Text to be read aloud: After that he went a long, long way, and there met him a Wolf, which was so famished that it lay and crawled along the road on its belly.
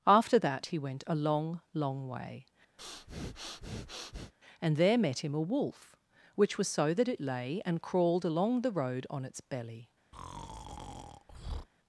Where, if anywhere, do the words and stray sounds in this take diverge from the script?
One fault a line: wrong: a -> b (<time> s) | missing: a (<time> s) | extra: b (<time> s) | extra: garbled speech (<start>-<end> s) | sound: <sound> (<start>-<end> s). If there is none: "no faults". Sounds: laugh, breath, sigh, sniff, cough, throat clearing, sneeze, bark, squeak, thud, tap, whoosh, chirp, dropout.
sound: breath (2.8-4.3 s)
missing: famished (6.9 s)
sound: breath (10.1-11.7 s)